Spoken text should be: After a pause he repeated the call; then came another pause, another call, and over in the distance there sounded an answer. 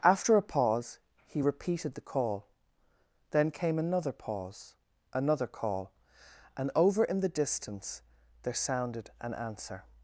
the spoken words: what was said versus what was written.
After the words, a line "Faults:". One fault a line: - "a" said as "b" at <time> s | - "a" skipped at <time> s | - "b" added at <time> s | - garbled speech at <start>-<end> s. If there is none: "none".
After a pause he repeated the call; then came another pause, another call, and over in the distance there sounded an answer.
Faults:
none